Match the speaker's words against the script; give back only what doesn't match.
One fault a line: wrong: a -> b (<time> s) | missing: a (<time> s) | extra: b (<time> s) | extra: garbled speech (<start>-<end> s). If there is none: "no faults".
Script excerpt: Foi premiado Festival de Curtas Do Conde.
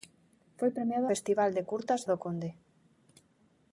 no faults